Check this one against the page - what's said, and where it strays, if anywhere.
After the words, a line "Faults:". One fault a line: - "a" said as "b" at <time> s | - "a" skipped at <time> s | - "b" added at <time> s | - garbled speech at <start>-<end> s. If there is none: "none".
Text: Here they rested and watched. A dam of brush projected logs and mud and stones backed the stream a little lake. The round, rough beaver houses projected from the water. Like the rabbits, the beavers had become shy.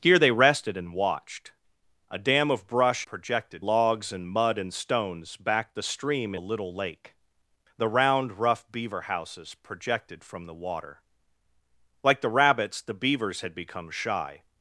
Here they rested and watched. A dam of brush projected logs and mud and stones backed the stream a little lake. The round, rough beaver houses projected from the water. Like the rabbits, the beavers had become shy.
Faults:
none